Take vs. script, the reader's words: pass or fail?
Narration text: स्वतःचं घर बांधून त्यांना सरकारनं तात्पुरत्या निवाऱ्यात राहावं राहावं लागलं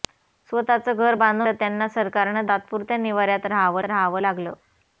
pass